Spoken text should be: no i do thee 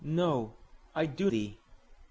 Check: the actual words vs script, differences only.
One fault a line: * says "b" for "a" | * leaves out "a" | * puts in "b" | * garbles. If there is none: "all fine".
all fine